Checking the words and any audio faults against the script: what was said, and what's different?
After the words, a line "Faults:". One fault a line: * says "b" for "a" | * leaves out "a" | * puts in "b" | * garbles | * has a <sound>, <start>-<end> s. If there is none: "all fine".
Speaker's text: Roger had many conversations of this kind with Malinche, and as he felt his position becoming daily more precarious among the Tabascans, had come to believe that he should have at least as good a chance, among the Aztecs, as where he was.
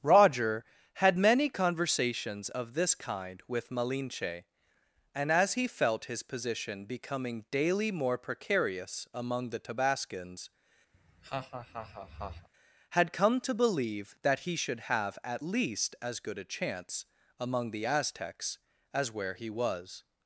Roger had many conversations of this kind with Malinche, and as he felt his position becoming daily more precarious among the Tabascans, had come to believe that he should have at least as good a chance, among the Aztecs, as where he was.
Faults:
* has a laugh, 10.9-12.5 s